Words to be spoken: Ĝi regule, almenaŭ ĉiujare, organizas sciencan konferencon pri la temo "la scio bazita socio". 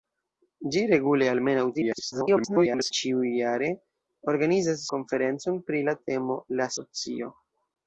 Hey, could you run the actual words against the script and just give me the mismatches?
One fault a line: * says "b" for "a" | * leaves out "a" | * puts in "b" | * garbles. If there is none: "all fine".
* garbles
* leaves out "sciencan"
* leaves out "scio bazita"